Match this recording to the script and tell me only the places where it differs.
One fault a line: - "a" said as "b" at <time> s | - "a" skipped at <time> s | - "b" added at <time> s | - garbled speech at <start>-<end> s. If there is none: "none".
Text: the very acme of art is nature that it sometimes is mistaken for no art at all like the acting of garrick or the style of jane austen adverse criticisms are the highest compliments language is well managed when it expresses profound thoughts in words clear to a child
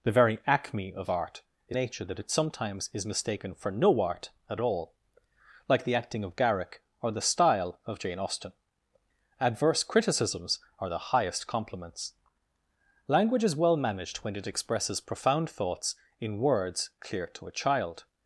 none